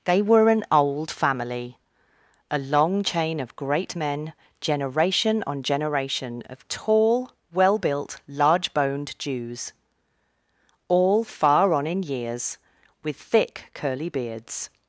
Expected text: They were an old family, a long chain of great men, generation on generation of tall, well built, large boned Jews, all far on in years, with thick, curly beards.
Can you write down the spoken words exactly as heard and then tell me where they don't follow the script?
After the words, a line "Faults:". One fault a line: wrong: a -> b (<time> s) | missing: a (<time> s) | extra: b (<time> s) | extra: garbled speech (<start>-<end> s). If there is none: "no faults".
They were an old family, a long chain of great men, generation on generation of tall, well built, large boned Jews, all far on in years, with thick, curly beards.
Faults:
no faults